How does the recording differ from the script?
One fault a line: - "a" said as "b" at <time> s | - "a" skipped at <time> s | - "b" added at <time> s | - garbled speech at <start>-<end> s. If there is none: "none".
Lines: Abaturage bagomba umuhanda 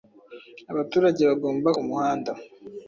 none